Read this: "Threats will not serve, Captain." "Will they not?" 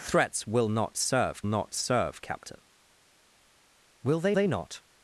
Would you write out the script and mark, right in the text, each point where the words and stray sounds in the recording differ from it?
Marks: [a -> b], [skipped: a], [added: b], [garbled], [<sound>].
"Threats will not serve, [added: not serve] Captain." "Will they [added: they] not?"